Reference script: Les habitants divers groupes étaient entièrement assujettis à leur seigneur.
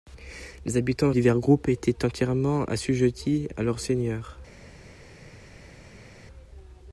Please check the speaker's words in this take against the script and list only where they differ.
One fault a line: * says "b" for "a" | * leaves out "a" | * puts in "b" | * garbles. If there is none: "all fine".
all fine